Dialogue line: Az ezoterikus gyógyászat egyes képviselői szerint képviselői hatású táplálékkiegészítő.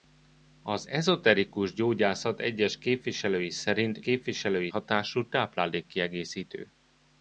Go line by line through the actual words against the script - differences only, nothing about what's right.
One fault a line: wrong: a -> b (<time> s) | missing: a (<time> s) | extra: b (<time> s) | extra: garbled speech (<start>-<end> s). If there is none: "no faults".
no faults